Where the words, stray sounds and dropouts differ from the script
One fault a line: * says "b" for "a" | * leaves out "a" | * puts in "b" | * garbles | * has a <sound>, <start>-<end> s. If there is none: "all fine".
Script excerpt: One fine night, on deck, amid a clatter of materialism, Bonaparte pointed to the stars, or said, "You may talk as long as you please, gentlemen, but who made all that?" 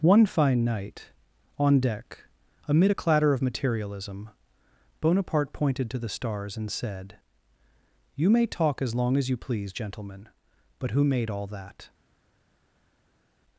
* says "and" for "or"